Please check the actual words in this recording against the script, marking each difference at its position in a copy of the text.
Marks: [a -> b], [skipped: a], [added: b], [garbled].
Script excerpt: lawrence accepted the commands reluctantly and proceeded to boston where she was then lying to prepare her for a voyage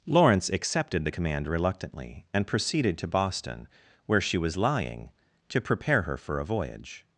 lawrence accepted the [commands -> command] reluctantly and proceeded to boston where she was [skipped: then] lying to prepare her for a voyage